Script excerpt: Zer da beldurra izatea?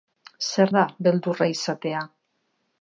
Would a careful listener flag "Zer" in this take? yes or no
no